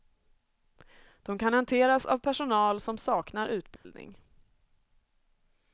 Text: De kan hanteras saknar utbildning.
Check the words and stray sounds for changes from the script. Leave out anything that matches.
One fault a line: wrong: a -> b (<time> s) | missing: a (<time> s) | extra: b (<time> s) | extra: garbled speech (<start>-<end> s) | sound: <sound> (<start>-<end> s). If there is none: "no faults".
extra: av personal som (2.0 s)
sound: dropout (3.8-3.8 s)